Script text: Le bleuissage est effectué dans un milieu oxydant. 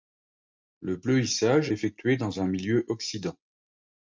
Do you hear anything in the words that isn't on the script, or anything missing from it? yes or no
yes